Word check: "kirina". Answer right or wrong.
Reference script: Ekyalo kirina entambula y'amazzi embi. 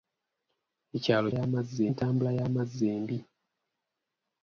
wrong